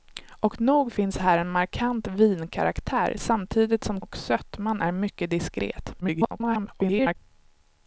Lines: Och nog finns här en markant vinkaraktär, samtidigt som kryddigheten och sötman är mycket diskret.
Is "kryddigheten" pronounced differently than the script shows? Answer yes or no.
yes